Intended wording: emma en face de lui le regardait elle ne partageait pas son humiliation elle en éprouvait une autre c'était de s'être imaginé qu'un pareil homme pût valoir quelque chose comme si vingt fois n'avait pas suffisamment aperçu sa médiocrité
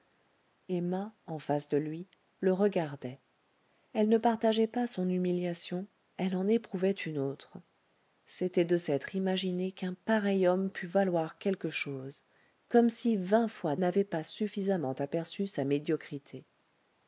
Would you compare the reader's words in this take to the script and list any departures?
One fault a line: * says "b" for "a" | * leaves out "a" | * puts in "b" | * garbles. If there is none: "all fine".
all fine